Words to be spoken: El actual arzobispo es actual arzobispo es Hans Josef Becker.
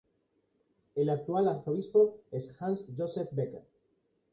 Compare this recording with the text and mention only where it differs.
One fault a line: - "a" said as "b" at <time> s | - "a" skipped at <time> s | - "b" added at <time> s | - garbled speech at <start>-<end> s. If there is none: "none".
- "actual arzobispo es" skipped at 2.6 s